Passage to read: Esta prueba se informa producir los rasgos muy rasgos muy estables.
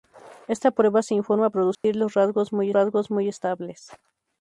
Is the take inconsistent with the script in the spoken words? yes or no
no